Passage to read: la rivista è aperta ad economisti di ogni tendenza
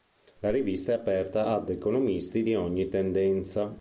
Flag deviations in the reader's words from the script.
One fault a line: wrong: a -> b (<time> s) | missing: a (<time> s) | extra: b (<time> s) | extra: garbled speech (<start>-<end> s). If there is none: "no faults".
no faults